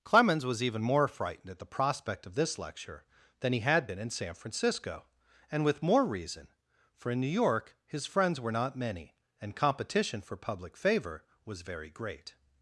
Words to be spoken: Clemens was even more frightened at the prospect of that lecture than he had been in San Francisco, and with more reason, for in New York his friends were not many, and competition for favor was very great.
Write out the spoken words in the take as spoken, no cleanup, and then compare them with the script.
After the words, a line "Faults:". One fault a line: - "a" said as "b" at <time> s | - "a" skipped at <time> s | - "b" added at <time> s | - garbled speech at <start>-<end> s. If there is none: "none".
Clemens was even more frightened at the prospect of this lecture than he had been in San Francisco, and with more reason, for in New York his friends were not many, and competition for public favor was very great.
Faults:
- "that" said as "this" at 2.4 s
- "public" added at 10.4 s